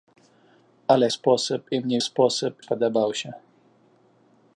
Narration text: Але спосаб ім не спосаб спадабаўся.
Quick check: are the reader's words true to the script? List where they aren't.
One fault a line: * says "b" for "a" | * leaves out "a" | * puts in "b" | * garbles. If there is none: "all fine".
all fine